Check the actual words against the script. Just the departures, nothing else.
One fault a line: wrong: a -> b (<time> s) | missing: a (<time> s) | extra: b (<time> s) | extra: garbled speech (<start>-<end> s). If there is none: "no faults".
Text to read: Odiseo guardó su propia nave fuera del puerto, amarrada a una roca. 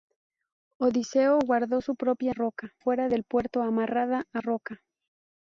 wrong: nave -> roca (2.3 s)
missing: una (4.4 s)